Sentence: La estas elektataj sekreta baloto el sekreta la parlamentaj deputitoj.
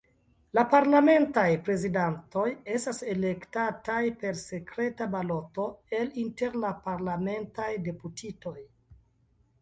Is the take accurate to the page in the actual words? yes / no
no